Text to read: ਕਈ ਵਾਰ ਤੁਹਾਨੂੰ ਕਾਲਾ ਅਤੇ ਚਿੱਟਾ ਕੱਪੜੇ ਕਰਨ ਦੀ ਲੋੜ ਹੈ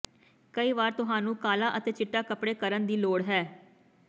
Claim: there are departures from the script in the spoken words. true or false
false